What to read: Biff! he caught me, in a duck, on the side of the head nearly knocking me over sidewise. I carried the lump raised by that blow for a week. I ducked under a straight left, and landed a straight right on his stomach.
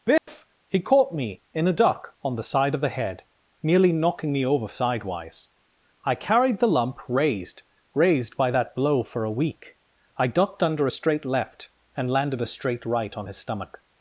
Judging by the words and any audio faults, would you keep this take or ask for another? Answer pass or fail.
fail